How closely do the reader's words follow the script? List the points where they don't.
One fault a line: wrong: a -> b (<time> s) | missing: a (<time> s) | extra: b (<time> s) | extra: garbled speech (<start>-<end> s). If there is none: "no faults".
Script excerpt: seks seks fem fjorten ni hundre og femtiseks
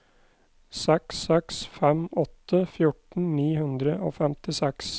extra: åtte (2.2 s)